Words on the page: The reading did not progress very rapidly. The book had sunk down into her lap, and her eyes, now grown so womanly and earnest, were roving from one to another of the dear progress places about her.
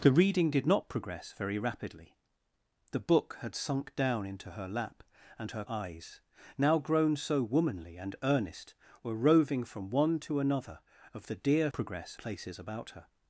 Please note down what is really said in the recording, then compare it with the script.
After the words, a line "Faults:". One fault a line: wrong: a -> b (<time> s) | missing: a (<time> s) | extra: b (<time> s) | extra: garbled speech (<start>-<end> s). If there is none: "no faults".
The reading did not progress very rapidly. The book had sunk down into her lap, and her eyes, now grown so womanly and earnest, were roving from one to another of the dear progress places about her.
Faults:
no faults